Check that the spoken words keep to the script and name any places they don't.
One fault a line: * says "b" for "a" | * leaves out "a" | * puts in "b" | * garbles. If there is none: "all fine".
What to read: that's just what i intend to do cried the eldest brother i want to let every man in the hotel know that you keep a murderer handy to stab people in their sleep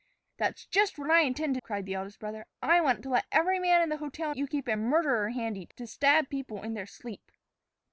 * leaves out "do"
* leaves out "know that"